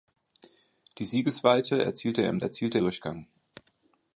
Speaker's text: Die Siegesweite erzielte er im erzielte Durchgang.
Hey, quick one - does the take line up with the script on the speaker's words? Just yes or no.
yes